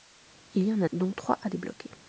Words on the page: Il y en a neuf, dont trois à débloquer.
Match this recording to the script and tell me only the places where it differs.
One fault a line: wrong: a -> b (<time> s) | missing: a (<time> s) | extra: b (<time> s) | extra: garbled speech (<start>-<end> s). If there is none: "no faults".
missing: neuf (0.9 s)